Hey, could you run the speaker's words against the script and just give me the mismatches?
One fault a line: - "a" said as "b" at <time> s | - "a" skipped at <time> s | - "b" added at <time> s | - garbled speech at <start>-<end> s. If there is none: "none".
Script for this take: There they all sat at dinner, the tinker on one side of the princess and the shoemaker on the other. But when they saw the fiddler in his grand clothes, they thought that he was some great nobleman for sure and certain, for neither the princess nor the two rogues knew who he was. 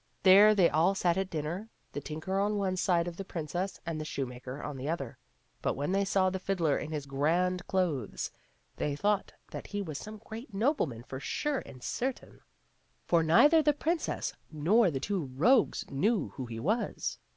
none